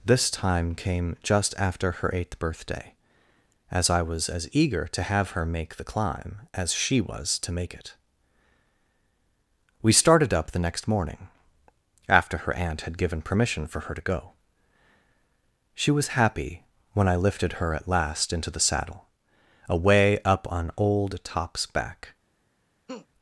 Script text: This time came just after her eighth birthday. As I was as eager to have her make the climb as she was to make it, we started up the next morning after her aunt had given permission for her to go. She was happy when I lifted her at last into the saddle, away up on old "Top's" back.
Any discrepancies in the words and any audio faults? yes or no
yes